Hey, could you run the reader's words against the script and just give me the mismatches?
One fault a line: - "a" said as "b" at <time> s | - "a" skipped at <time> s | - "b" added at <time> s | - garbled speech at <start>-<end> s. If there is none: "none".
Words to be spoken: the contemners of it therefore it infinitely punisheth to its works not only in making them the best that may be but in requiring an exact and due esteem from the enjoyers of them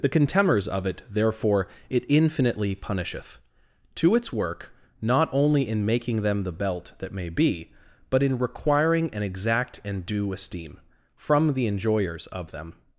- "works" said as "work" at 4.3 s
- "best" said as "belt" at 6.5 s